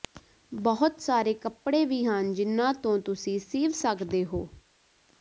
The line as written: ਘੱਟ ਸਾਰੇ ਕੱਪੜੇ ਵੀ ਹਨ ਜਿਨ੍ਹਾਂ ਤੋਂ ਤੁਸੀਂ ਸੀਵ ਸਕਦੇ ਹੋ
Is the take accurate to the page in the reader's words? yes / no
no